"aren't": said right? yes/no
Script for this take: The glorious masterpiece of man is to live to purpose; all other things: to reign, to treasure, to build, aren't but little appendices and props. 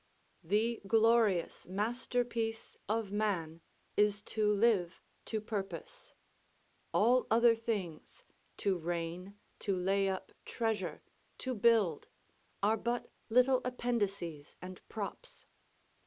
no